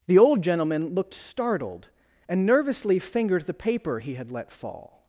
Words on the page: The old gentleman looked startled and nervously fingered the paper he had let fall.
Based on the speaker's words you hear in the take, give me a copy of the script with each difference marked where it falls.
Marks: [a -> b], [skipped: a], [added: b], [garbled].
The old gentleman looked startled and nervously fingered the paper he had let fall.